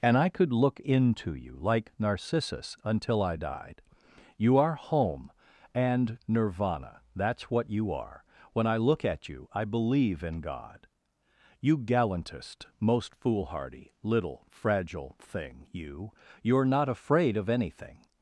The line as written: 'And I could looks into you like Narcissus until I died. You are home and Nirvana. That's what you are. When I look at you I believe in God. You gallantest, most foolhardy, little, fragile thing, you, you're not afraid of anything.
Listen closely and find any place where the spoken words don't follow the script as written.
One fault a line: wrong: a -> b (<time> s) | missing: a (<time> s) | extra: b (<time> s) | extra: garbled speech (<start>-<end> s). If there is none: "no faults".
wrong: looks -> look (0.5 s)